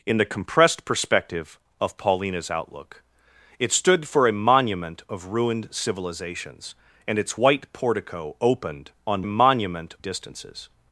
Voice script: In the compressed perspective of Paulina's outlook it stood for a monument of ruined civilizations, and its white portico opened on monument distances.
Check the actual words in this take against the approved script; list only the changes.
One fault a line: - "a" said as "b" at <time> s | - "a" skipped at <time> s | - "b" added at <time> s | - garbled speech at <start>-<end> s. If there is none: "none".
none